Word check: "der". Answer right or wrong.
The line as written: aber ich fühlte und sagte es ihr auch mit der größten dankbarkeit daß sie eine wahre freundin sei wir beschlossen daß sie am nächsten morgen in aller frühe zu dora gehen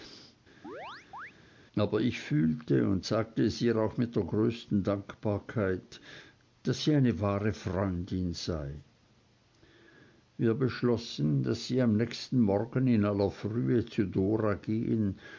right